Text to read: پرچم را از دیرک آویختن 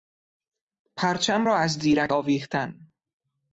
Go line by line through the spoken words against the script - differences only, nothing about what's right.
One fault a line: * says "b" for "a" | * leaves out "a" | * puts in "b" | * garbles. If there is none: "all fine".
all fine